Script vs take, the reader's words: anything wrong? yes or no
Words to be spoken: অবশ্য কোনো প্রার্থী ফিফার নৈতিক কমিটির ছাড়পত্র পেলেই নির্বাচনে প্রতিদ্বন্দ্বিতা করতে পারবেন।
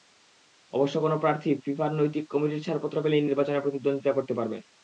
no